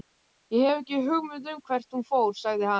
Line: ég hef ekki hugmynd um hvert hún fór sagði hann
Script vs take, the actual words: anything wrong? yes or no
no